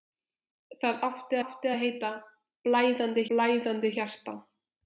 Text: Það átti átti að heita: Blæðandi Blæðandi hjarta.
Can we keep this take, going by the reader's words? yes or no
yes